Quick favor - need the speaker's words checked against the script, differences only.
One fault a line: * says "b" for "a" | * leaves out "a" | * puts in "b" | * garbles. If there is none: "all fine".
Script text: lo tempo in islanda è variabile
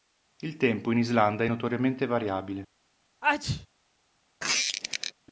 * says "il" for "lo"
* puts in "notoriamente"